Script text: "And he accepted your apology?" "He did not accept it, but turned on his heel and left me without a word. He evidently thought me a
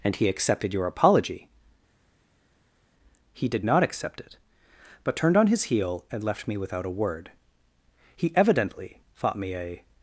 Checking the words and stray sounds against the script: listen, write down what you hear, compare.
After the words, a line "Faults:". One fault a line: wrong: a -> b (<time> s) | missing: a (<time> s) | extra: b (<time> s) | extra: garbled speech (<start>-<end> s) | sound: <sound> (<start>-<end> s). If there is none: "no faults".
"And he accepted your apology?" "He did not accept it, but turned on his heel and left me without a word. He evidently thought me a
Faults:
no faults